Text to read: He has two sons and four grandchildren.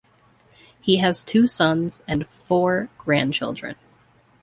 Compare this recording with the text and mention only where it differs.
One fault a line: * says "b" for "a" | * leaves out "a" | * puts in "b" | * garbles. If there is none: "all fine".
all fine